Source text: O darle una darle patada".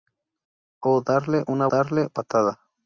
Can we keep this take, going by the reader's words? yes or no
yes